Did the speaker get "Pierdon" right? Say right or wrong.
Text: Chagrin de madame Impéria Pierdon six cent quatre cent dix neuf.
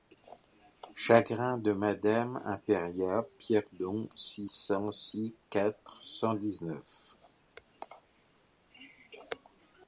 right